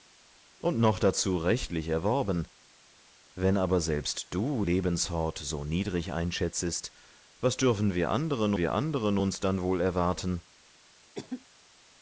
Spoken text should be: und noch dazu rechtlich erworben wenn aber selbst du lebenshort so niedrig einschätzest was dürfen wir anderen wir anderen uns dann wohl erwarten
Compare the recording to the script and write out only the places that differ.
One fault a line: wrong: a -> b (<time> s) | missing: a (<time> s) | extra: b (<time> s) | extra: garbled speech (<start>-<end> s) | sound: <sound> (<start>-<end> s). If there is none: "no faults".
sound: cough (11.1-11.4 s)